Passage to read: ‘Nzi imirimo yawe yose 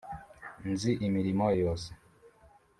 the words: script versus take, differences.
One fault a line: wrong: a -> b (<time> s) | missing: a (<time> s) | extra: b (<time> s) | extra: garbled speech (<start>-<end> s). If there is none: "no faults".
missing: yawe (1.5 s)